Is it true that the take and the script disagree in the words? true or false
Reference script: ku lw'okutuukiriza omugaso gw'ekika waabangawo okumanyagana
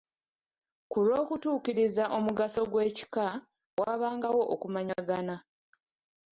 false